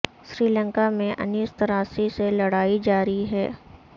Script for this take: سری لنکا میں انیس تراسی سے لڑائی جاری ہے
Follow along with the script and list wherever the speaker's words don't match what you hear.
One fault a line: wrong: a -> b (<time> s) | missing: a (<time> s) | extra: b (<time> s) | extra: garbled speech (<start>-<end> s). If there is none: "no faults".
no faults